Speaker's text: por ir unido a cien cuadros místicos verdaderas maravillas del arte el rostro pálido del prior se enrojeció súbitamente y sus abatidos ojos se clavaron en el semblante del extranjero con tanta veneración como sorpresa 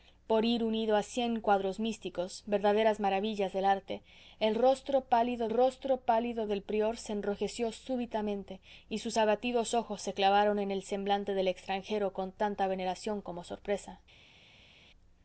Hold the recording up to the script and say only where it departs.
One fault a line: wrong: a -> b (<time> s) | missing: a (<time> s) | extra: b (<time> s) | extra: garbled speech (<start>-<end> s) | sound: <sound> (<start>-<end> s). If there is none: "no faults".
extra: rostro pálido (5.5 s)